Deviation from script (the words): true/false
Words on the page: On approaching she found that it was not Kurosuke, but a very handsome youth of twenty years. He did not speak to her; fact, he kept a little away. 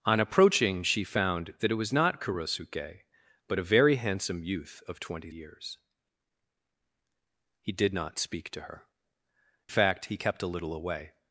false